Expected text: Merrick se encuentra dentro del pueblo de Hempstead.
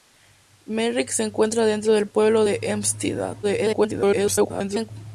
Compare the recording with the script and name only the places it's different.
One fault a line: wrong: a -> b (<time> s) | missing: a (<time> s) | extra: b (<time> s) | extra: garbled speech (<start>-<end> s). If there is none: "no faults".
extra: garbled speech (3.4-4.9 s)